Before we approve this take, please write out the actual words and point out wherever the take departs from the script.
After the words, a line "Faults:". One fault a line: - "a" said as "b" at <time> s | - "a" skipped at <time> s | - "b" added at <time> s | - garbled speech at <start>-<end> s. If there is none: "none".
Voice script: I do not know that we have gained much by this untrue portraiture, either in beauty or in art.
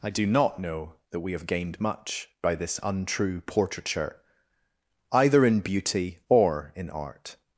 I do not know that we have gained much by this untrue portraiture, either in beauty or in art.
Faults:
none